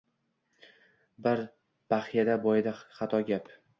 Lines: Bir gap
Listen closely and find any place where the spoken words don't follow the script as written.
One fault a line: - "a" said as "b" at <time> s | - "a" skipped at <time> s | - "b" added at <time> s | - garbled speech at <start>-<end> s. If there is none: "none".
- "baxyada boyidi xato" added at 1.9 s